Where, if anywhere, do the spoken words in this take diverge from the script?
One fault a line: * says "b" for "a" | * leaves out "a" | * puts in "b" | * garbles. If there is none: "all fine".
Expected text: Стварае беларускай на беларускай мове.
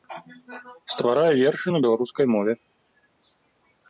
* says "вершы" for "беларускай"